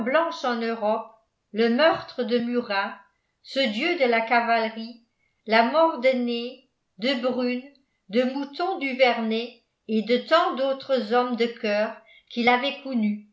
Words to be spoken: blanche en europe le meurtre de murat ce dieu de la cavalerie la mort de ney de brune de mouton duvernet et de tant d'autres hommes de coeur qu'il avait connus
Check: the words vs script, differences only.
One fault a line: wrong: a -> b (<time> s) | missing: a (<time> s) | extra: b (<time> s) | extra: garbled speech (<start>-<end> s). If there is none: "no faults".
no faults